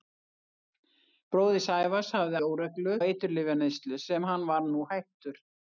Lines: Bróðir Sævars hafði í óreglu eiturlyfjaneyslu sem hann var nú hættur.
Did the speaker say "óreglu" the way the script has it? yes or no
yes